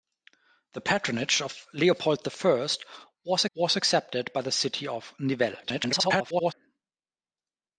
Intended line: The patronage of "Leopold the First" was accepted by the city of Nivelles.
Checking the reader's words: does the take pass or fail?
fail